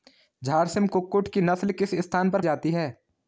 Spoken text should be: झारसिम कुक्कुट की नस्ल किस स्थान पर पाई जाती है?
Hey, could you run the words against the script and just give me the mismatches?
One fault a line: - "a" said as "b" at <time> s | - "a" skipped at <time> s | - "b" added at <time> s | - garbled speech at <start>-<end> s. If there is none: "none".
- "पाई" skipped at 2.4 s